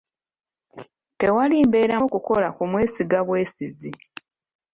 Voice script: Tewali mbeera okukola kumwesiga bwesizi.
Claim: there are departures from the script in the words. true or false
false